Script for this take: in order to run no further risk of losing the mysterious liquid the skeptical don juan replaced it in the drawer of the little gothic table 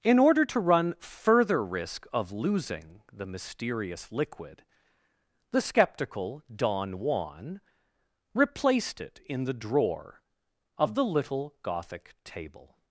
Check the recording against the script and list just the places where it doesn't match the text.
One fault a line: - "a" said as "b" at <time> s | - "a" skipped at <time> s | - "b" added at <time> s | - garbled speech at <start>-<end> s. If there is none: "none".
- "no" skipped at 0.9 s